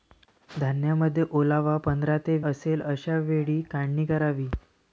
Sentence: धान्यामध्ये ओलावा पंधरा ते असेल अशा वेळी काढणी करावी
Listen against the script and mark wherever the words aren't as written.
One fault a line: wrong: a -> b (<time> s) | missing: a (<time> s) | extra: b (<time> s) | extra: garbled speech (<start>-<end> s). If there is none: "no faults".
no faults